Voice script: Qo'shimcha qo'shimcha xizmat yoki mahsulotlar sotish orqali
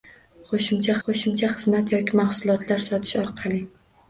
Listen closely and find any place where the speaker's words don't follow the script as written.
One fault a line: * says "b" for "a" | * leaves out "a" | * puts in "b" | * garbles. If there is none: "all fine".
all fine